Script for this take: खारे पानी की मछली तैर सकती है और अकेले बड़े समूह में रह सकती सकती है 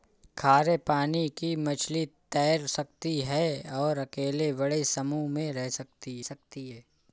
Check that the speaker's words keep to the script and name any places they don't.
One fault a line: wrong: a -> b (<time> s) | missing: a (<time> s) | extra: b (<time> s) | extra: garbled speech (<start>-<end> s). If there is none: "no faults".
no faults